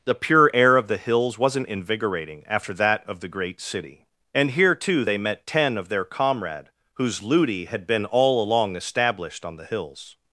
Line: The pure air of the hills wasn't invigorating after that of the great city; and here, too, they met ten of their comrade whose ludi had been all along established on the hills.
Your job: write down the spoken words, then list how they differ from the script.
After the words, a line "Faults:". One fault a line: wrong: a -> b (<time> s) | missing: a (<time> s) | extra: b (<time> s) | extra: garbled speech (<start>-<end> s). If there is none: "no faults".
The pure air of the hills wasn't invigorating after that of the great city; and here, too, they met ten of their comrade whose ludi had been all along established on the hills.
Faults:
no faults